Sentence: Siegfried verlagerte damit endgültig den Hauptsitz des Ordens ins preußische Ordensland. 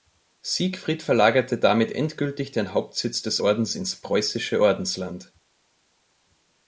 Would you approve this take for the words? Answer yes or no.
yes